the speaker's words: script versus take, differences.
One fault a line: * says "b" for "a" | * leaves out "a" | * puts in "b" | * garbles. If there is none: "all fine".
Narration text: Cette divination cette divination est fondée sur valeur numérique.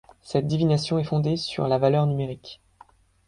* leaves out "cette divination"
* puts in "la"